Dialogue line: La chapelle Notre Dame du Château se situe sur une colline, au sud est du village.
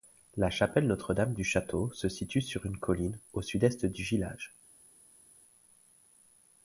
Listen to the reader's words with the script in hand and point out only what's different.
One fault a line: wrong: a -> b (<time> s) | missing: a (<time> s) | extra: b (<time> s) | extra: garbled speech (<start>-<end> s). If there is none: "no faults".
no faults